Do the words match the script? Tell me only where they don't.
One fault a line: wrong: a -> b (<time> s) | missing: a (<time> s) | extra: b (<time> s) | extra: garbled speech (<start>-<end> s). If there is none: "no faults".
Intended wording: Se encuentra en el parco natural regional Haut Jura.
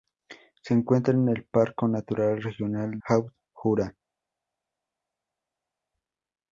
no faults